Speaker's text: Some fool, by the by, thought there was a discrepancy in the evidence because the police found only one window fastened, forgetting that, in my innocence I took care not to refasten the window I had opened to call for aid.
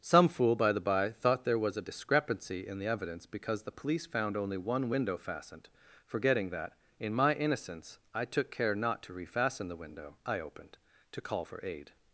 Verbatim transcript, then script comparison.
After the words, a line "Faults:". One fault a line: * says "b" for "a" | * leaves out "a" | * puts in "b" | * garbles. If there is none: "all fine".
Some fool, by the by, thought there was a discrepancy in the evidence because the police found only one window fastened, forgetting that, in my innocence I took care not to refasten the window I opened to call for aid.
Faults:
* leaves out "had"